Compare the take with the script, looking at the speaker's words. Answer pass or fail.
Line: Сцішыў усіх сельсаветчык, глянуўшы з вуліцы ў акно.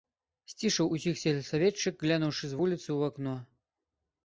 pass